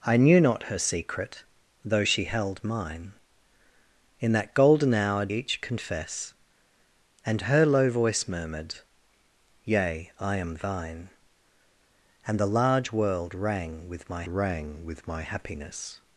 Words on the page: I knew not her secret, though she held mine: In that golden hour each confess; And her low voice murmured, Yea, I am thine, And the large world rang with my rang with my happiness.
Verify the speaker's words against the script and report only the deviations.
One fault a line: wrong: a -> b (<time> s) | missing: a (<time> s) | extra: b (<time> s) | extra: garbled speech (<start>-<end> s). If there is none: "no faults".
no faults